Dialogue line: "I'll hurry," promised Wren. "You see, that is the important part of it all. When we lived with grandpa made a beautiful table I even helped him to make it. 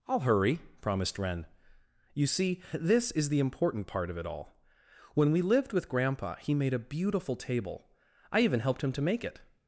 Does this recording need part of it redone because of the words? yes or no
yes